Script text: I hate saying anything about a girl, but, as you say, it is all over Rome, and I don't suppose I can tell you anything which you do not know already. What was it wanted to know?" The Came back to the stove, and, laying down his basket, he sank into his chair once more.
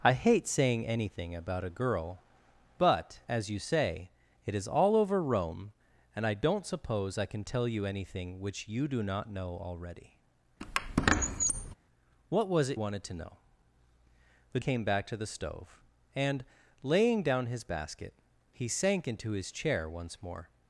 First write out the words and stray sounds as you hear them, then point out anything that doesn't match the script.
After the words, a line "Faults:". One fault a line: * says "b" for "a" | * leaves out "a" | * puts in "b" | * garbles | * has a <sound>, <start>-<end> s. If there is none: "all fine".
I hate saying anything about a girl, but, as you say, it is all over Rome, and I don't suppose I can tell you anything which you do not know already. What was it wanted to know?" The Came back to the stove, and, laying down his basket, he sank into his chair once more.
Faults:
* has a squeak, 10.6-11.8 s